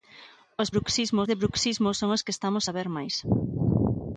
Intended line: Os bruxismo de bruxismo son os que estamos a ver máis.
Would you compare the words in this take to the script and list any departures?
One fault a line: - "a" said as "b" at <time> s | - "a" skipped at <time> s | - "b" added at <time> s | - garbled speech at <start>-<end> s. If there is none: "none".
none